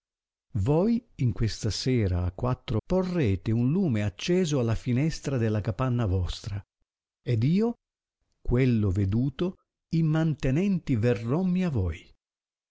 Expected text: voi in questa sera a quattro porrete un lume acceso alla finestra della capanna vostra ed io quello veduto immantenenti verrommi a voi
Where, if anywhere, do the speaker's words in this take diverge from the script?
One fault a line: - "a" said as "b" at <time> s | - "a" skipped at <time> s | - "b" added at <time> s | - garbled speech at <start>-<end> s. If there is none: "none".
none